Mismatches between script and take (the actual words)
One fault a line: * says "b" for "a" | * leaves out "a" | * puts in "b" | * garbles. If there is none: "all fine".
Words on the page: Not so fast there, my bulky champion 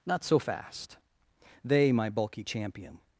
* says "they" for "there"